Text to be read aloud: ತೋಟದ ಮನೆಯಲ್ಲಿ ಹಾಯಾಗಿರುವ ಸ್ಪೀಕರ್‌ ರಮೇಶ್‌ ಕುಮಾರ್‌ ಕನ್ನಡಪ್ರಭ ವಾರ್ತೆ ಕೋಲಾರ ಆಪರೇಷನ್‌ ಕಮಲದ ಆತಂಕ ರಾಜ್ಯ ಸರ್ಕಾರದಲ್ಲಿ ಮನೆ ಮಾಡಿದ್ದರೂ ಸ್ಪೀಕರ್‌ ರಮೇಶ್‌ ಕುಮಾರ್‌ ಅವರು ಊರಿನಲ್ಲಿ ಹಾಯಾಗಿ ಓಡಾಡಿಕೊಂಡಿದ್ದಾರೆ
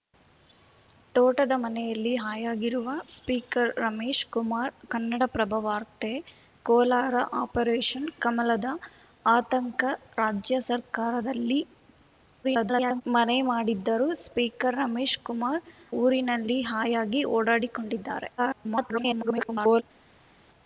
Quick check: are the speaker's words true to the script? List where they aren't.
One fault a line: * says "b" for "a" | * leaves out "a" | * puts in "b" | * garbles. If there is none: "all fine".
* garbles
* leaves out "ಅವರು"
* garbles